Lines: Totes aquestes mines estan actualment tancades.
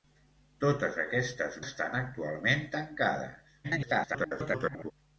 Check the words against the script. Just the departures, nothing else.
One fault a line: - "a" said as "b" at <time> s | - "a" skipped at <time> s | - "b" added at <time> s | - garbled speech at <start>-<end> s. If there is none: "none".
- "mines" skipped at 1.6 s
- garbled speech at 3.6-4.9 s